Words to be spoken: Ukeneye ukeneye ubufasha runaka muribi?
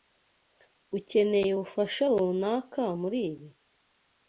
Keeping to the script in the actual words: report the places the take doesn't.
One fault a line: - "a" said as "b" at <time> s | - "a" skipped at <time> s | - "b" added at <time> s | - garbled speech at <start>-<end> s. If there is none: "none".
- "ukeneye" skipped at 1.5 s